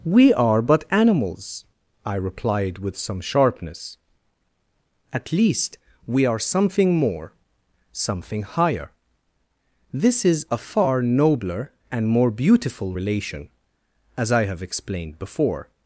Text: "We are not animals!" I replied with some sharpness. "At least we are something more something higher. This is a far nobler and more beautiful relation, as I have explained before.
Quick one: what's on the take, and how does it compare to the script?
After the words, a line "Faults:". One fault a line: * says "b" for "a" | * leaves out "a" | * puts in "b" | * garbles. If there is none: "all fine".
"We are but animals!" I replied with some sharpness. "At least we are something more something higher. This is a far nobler and more beautiful relation, as I have explained before.
Faults:
* says "but" for "not"